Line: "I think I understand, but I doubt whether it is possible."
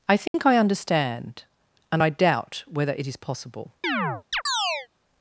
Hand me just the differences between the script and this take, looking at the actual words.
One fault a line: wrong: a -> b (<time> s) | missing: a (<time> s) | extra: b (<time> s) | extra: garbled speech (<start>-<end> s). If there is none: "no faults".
wrong: but -> and (1.9 s)